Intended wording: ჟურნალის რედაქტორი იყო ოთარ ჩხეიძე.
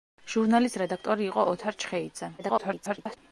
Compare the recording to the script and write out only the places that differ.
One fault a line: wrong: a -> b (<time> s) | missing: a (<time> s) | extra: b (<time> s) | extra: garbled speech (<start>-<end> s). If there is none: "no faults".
extra: garbled speech (2.4-3.2 s)